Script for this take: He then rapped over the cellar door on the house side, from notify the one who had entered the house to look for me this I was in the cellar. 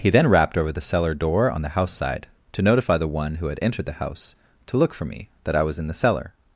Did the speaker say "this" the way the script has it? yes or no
no